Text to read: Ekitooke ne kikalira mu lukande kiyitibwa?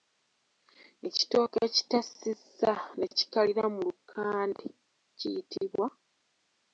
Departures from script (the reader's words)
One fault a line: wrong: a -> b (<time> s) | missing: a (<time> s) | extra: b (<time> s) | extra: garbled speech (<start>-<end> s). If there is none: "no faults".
extra: ekitassizza (1.7 s)